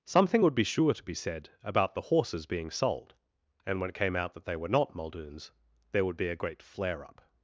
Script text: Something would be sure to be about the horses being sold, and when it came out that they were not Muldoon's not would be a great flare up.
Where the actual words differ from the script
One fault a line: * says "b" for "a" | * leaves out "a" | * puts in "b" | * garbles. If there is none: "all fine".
* puts in "said"
* says "there" for "not"